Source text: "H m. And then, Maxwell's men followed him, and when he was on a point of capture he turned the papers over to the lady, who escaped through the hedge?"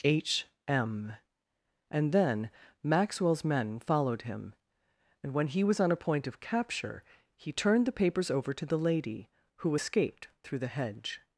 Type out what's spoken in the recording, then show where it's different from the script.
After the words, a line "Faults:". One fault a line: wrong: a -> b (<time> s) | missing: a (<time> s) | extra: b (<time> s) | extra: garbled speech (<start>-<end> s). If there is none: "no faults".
"H m. And then, Maxwell's men followed him, and when he was on a point of capture he turned the papers over to the lady, who escaped through the hedge?"
Faults:
no faults